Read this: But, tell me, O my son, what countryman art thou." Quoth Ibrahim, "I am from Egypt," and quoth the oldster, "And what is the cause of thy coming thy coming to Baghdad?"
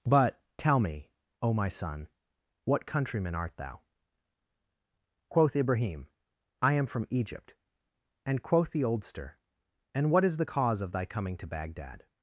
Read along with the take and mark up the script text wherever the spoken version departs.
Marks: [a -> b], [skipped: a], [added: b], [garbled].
But, tell me, O my son, what countryman art thou." Quoth Ibrahim, "I am from Egypt," and quoth the oldster, "And what is the cause of thy coming [skipped: thy coming] to Baghdad?"